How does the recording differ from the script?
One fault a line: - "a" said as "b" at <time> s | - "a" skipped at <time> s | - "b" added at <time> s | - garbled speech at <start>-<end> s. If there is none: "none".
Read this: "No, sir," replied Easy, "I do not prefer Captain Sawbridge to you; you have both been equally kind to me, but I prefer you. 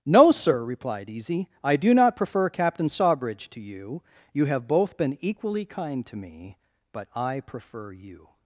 none